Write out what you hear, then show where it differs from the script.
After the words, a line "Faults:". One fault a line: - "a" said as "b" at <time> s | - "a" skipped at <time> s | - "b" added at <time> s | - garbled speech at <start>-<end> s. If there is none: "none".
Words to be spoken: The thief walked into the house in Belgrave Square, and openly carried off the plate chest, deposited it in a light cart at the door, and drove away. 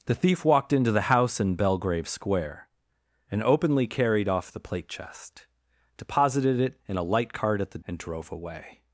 The thief walked into the house in Belgrave Square, and openly carried off the plate chest, deposited it in a light cart at the and drove away.
Faults:
- "door" skipped at 7.8 s